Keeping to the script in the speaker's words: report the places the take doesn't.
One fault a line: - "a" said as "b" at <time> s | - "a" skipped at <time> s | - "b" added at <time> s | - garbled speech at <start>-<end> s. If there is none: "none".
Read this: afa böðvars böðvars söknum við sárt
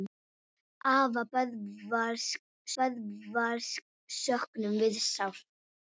none